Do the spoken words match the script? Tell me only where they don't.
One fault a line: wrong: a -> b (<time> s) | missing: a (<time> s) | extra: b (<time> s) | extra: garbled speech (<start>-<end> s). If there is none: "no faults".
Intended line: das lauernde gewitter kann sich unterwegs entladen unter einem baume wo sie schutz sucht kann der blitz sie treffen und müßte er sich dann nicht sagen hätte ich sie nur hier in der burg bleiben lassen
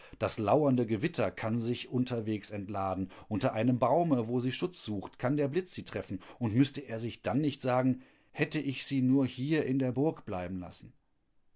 no faults